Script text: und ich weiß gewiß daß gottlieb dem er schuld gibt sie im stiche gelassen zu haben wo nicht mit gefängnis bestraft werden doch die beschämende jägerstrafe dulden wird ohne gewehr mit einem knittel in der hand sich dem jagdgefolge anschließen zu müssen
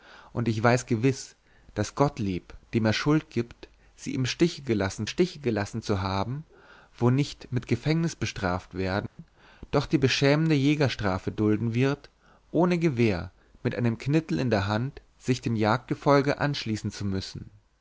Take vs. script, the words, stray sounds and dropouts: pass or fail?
fail